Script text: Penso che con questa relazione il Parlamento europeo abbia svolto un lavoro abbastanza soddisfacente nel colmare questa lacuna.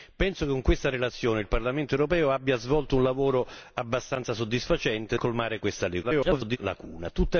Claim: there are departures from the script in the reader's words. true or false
true